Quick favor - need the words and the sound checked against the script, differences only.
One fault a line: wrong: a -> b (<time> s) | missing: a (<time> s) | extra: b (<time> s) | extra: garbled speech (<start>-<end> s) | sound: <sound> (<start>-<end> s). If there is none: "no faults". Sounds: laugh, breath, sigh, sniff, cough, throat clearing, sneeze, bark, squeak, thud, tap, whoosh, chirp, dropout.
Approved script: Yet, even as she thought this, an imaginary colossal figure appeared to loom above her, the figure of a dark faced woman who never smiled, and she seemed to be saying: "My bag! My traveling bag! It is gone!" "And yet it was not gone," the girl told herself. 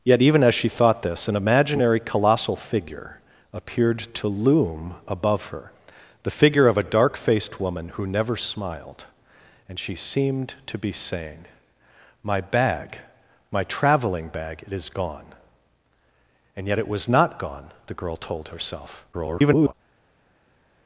extra: garbled speech (19.1-19.7 s)